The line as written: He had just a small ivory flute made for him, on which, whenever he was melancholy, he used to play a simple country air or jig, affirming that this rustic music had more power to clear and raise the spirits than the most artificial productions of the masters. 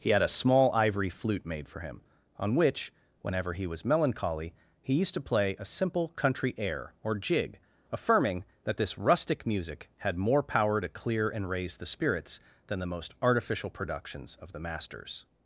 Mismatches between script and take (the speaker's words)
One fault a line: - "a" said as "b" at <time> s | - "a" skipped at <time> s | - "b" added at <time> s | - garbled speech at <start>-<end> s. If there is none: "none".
- "just" skipped at 0.2 s